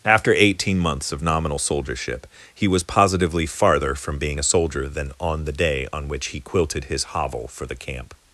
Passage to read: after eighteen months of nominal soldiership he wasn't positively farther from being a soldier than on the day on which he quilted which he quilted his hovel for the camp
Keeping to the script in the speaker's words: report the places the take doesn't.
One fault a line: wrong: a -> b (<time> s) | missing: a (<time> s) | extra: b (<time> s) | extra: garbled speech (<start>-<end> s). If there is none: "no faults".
wrong: wasn't -> was (2.7 s)
missing: which he quilted (6.8 s)